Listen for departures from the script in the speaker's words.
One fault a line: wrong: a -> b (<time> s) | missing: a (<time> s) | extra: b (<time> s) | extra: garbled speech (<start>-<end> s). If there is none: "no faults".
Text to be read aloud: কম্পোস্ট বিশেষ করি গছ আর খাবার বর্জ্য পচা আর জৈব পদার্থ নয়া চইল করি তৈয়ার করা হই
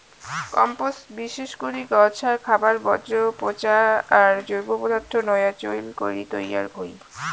missing: করা (6.7 s)